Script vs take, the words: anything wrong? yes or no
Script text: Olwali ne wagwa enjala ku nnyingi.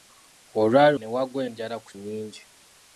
no